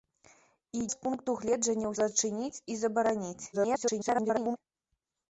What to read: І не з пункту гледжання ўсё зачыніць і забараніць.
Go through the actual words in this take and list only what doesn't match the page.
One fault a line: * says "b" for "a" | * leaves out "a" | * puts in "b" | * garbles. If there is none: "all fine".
* leaves out "не"
* leaves out "ўсё"
* garbles